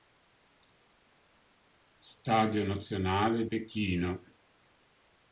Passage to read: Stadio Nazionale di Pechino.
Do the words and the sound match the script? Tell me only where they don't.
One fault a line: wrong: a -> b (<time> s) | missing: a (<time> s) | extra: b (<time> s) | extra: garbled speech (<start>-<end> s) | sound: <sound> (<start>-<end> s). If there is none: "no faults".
missing: di (3.5 s)